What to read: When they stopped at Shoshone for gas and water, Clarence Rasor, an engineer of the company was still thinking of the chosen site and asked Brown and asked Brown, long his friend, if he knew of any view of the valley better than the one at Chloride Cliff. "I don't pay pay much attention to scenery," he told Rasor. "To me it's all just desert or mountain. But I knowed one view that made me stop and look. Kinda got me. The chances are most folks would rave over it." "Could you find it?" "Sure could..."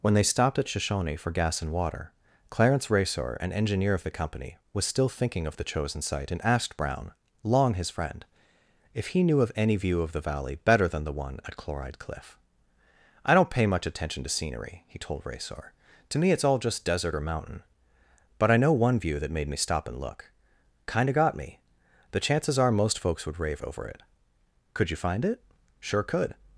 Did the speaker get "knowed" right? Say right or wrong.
wrong